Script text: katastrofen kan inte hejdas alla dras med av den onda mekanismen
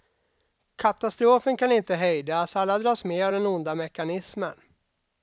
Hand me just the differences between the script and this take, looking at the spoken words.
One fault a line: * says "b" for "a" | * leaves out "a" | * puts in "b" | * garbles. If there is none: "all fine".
all fine